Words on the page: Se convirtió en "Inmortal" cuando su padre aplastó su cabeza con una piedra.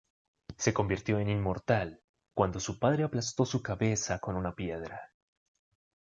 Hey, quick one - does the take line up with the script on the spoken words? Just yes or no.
yes